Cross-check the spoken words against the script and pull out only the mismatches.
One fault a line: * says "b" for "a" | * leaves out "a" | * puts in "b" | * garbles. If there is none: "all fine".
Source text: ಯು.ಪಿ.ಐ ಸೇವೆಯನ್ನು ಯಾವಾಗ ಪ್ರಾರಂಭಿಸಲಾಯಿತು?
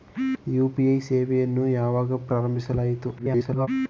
* garbles